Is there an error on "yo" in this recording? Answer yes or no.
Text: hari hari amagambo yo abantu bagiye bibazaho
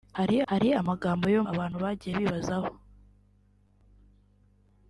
no